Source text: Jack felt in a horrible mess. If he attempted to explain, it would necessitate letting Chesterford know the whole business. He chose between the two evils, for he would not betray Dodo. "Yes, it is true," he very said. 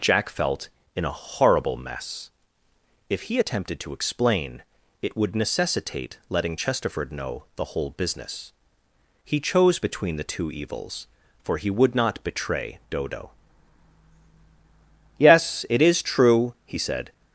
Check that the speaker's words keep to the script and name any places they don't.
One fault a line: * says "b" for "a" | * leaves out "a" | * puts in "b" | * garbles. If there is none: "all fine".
* leaves out "very"